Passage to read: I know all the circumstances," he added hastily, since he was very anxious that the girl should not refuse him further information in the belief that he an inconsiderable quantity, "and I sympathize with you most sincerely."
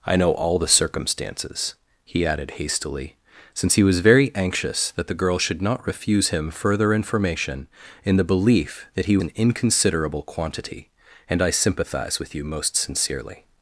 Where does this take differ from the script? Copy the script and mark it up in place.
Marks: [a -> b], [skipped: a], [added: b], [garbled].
I know all the circumstances," he added hastily, since he was very anxious that the girl should not refuse him further information in the belief that he an inconsiderable quantity, "and I sympathize with you most sincerely."